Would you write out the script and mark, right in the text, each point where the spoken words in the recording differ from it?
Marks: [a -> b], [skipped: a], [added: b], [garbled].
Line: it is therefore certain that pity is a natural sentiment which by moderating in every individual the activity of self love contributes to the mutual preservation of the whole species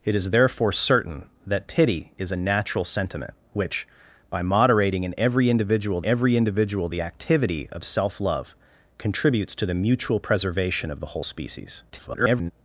it is therefore certain that pity is a natural sentiment which by moderating in every individual [added: every individual] the activity of self love contributes to the mutual preservation of the whole species [garbled]